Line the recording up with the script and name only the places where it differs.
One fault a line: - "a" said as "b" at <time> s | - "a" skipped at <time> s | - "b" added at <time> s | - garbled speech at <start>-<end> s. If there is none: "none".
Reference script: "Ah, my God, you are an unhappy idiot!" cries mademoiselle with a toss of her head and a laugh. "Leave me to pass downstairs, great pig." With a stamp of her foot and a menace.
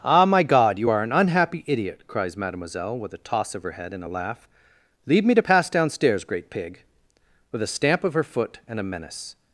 none